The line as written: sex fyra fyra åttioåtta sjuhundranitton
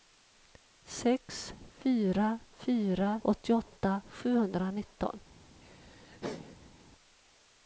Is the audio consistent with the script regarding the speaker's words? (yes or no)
yes